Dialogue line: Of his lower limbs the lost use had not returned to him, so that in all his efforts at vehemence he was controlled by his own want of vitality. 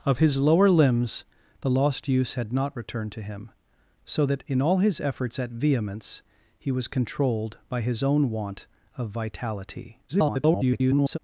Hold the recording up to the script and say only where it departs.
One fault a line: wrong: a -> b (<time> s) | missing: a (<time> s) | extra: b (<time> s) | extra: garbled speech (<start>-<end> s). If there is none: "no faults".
extra: garbled speech (10.1-11.2 s)